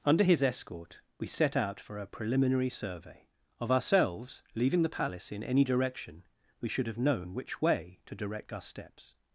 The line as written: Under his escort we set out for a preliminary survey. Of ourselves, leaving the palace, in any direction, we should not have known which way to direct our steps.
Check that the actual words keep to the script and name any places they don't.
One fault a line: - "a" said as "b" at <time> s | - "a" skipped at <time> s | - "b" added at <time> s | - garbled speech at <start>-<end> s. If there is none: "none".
- "not" skipped at 6.9 s